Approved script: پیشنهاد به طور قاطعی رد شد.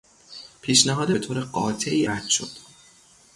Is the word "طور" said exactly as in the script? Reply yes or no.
yes